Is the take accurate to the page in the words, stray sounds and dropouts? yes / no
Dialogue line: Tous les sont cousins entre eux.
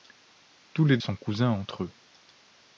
yes